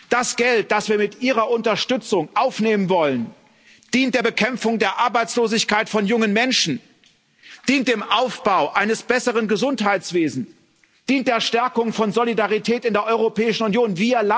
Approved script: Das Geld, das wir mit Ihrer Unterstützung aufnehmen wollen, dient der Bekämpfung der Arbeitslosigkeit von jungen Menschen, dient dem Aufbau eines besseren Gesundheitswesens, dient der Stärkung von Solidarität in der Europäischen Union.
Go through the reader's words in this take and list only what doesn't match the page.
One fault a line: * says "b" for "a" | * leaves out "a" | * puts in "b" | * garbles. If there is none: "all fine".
all fine